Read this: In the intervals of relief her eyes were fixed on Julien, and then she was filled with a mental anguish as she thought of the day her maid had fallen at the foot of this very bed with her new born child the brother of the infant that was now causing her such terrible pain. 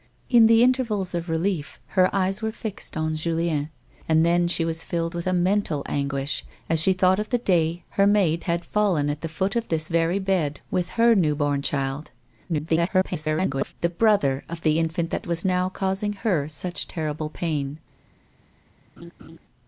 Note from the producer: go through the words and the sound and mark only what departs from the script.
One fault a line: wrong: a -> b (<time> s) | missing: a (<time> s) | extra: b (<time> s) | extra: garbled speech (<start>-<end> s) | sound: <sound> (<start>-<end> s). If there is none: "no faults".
extra: garbled speech (12.5-13.7 s)
sound: laugh (19.0-19.4 s)